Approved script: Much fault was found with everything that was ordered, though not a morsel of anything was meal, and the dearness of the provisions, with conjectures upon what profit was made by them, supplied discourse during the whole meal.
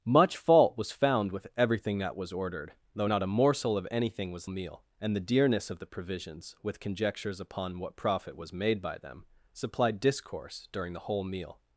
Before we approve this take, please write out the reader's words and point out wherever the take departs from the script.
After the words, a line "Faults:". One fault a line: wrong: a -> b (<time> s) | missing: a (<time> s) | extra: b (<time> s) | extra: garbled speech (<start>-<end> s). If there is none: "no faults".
Much fault was found with everything that was ordered, though not a morsel of anything was meal, and the dearness of the provisions, with conjectures upon what profit was made by them, supplied discourse during the whole meal.
Faults:
no faults